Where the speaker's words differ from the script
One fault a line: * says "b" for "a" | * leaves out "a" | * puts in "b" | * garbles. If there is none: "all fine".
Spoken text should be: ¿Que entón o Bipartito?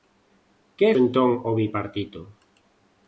all fine